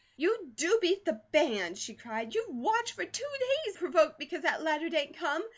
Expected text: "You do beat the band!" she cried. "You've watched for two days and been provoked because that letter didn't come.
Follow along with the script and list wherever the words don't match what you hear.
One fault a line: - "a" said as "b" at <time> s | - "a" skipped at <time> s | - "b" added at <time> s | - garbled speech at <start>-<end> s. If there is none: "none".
- "and been" skipped at 3.8 s